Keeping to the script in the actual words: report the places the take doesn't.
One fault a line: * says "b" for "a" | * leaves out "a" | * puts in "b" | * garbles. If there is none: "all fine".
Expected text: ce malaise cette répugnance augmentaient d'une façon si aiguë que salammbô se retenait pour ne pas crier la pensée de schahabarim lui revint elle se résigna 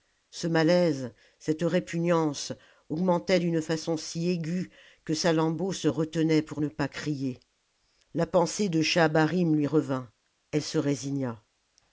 all fine